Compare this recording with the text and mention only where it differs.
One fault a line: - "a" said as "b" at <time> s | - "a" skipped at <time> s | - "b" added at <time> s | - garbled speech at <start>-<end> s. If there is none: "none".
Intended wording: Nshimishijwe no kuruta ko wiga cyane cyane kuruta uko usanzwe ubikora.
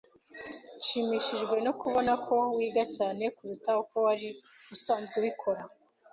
- "kuruta" said as "kubona" at 1.8 s
- "cyane" skipped at 3.2 s
- "wari" added at 4.1 s